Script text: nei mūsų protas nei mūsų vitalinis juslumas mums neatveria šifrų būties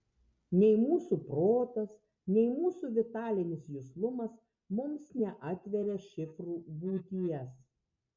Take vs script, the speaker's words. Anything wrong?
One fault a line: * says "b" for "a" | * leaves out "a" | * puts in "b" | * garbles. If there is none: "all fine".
all fine